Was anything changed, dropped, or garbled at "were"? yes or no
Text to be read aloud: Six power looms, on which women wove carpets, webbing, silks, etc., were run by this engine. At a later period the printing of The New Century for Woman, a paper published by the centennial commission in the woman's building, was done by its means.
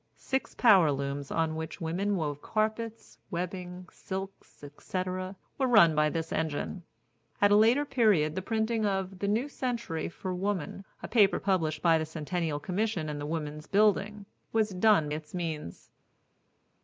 no